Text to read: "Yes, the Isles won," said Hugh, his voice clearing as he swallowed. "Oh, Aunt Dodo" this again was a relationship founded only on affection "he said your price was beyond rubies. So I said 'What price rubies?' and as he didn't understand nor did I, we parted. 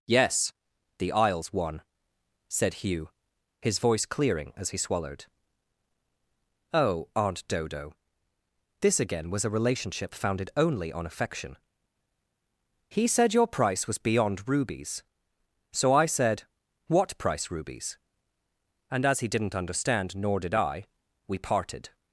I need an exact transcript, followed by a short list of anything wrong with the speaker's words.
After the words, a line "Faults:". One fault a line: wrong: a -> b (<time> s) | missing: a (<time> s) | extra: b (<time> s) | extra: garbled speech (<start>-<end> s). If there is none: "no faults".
"Yes, the Isles won," said Hugh, his voice clearing as he swallowed. "Oh, Aunt Dodo" this again was a relationship founded only on affection "he said your price was beyond rubies. So I said 'What price rubies?' and as he didn't understand nor did I, we parted.
Faults:
no faults